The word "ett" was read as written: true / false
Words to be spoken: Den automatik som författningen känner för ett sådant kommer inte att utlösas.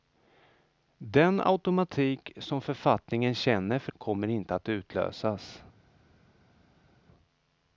false